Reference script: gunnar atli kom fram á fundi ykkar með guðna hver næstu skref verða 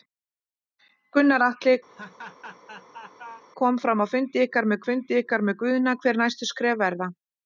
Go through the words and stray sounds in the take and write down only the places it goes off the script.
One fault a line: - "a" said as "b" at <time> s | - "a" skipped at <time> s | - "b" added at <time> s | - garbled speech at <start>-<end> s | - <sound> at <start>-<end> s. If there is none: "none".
- laugh at 1.9-3.4 s
- "fundi ykkar með" added at 4.9 s